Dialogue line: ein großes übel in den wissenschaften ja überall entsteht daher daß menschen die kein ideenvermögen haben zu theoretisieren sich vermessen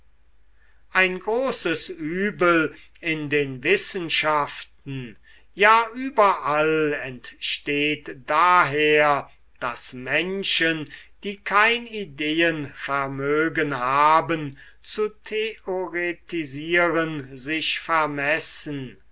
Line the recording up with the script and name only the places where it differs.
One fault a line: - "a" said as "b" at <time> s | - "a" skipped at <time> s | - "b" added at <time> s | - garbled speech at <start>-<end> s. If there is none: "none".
none